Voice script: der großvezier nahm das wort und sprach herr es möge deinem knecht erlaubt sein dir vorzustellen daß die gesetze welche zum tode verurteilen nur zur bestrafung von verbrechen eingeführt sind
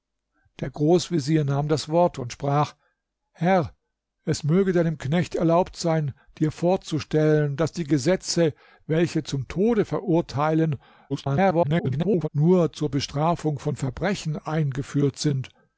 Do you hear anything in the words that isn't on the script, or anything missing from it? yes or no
yes